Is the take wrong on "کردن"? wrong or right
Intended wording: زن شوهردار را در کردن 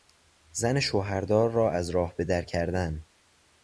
right